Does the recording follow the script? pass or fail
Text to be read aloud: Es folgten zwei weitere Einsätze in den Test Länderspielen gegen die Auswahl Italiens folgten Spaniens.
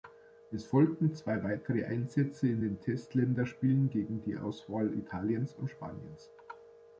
fail